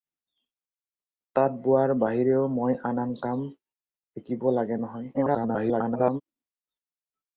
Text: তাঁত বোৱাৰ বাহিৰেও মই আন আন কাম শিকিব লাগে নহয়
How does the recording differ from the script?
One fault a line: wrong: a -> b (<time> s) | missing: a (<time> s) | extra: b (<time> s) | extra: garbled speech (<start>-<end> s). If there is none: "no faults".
extra: garbled speech (5.1-6.2 s)